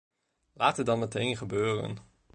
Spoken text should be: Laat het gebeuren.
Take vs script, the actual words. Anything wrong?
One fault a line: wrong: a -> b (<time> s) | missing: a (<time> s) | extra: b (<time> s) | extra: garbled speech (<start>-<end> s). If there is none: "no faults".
extra: dan meteen (0.8 s)